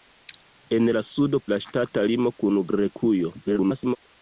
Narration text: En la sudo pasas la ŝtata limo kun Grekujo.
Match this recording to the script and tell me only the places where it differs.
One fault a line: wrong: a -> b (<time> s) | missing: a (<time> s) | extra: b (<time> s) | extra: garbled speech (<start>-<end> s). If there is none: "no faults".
missing: pasas (1.4 s)
extra: garbled speech (3.4-4.0 s)